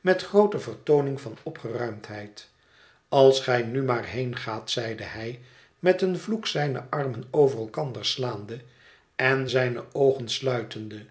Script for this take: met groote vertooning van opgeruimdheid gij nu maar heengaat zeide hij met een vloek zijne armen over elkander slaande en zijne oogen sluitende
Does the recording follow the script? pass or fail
fail